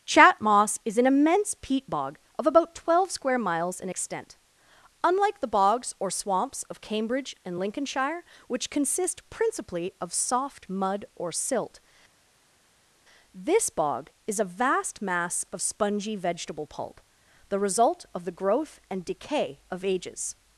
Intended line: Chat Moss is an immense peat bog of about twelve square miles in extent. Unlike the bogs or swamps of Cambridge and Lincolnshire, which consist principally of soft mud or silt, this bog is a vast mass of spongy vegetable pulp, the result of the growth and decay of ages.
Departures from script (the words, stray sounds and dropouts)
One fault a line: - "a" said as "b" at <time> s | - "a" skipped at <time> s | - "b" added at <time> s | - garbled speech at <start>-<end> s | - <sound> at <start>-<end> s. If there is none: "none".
none